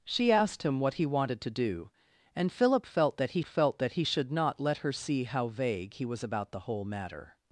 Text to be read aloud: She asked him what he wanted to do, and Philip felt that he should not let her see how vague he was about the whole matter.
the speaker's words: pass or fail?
fail